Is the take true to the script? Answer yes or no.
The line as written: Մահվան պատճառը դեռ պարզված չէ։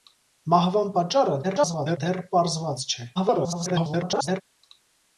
no